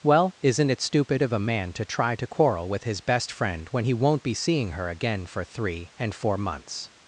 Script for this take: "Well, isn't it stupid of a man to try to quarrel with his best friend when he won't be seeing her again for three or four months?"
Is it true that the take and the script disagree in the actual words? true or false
true